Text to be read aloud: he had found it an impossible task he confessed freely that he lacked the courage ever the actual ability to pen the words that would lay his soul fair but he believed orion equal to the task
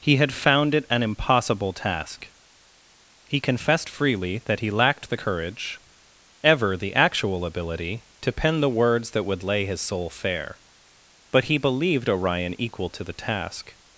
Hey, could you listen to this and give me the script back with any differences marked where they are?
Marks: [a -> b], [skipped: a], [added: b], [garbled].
he had found it an impossible task he confessed freely that he lacked the courage ever the actual ability to pen the words that would lay his soul fair but he believed orion equal to the task